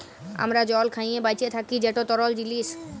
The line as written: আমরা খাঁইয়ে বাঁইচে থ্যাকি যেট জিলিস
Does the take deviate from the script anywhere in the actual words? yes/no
yes